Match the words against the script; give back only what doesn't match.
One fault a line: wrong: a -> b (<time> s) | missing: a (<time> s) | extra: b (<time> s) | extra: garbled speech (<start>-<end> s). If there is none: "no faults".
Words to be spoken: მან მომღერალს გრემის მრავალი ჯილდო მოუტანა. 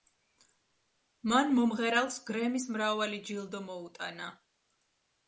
no faults